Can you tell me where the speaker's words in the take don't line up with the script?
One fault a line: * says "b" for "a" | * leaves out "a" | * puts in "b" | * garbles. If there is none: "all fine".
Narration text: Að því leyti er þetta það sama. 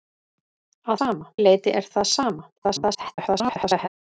* says "sama" for "því"
* leaves out "þetta"
* garbles